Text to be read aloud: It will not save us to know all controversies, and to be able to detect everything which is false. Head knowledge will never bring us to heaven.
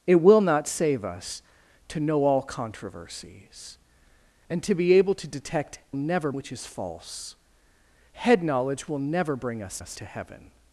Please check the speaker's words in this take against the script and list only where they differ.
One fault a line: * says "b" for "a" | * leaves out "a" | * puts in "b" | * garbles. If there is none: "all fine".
* says "never" for "everything"
* puts in "us"